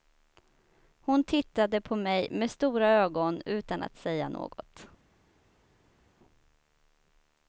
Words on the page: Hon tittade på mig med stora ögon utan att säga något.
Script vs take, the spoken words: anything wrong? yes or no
no